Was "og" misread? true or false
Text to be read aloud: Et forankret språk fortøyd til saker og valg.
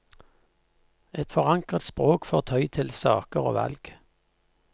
false